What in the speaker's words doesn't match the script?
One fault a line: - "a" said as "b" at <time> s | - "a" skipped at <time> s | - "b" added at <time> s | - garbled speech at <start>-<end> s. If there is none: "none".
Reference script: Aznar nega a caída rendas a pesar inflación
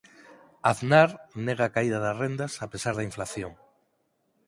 - "das" added at 2.0 s
- "da" added at 3.0 s